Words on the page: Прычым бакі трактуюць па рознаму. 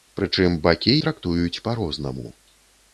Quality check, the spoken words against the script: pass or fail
pass